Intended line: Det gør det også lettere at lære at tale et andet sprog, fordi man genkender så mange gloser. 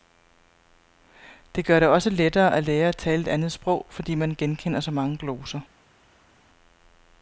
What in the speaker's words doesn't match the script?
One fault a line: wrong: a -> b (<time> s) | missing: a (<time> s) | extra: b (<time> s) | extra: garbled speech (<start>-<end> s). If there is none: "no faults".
no faults